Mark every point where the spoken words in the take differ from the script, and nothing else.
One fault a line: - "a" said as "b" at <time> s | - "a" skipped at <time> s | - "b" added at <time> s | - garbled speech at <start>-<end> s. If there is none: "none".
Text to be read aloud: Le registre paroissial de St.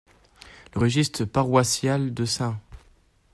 none